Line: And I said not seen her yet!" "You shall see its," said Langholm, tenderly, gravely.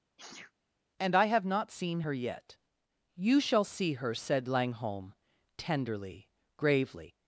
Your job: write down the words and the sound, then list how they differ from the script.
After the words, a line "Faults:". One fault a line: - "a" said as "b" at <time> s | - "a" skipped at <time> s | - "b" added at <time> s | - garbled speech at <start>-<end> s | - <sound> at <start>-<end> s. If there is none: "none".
And I have not seen her yet!" "You shall see her," said Langholm, tenderly, gravely.
Faults:
- sneeze at 0.2-0.5 s
- "said" said as "have" at 1.3 s
- "its" said as "her" at 3.9 s